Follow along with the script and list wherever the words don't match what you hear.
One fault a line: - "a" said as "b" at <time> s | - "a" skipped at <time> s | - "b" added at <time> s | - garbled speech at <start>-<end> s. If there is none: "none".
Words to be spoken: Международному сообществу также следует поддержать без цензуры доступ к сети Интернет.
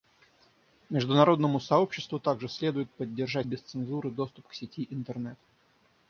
none